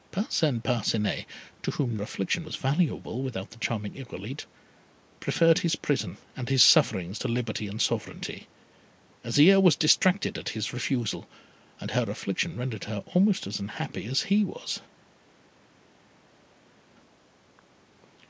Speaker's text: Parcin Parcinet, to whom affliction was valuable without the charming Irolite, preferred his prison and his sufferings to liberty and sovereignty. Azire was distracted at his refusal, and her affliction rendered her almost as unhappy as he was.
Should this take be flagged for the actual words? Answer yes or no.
no